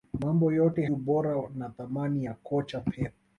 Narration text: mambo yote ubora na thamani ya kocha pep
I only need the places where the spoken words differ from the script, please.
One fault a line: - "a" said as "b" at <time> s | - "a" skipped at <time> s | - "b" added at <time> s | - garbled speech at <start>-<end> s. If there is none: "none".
none